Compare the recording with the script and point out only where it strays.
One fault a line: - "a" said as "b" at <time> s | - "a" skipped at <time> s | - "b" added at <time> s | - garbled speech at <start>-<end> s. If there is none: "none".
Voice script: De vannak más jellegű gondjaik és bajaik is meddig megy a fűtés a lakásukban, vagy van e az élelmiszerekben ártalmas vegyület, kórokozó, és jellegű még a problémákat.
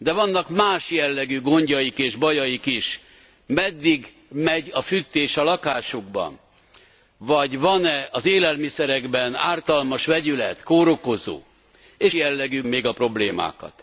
none